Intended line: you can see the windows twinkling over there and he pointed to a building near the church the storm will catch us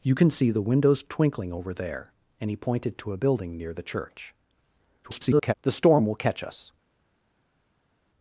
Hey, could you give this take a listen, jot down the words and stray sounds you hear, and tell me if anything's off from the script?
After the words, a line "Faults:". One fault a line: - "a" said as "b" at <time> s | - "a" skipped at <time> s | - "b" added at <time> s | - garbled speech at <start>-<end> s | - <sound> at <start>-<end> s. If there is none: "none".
you can see the windows twinkling over there and he pointed to a building near the church [garbled] the storm will catch us
Faults:
- garbled speech at 5.0-5.5 s